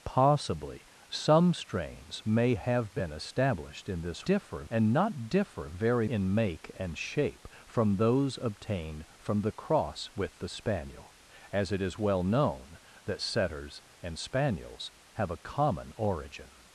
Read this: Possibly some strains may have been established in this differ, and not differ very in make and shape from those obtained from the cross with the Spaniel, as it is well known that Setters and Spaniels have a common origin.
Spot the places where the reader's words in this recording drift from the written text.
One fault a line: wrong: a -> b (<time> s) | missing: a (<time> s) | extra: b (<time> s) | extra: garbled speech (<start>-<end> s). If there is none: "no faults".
no faults